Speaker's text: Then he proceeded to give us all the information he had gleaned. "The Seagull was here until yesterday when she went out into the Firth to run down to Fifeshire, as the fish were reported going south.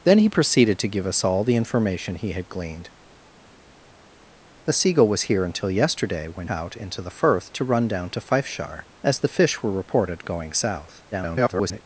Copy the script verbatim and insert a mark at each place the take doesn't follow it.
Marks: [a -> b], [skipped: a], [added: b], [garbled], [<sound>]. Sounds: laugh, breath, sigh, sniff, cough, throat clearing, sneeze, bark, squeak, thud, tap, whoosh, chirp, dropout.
Then he proceeded to give us all the information he had gleaned. "The Seagull was here until yesterday when [skipped: she went] out into the Firth to run down to Fifeshire, as the fish were reported going south. [garbled]